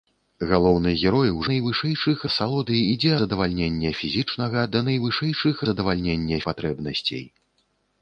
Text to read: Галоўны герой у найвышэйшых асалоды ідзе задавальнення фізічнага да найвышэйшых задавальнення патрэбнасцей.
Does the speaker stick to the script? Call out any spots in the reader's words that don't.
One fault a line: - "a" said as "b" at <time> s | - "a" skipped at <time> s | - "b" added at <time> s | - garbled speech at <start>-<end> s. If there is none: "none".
none